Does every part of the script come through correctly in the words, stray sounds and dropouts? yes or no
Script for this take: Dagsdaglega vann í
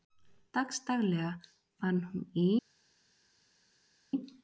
no